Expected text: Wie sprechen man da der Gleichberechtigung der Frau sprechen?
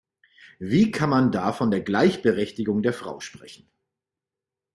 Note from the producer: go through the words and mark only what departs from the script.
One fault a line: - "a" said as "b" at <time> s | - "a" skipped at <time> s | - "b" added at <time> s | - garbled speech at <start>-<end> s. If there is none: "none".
- "sprechen" said as "kann" at 0.9 s
- "von" added at 1.5 s